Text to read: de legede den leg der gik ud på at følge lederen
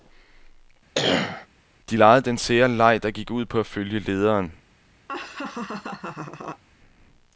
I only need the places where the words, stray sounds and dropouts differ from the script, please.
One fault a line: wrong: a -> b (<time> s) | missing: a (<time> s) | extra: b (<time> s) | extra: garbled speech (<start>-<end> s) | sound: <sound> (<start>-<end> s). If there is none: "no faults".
sound: cough (0.9-1.5 s)
extra: sære (2.4 s)
sound: laugh (5.1-6.6 s)